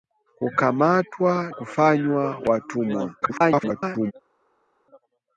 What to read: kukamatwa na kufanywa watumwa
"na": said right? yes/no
no